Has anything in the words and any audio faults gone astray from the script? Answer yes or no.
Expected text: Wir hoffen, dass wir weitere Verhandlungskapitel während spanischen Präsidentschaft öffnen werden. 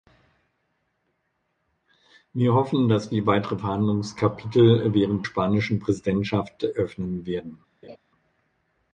yes